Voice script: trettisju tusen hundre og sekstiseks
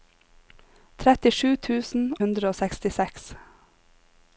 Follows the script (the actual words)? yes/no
yes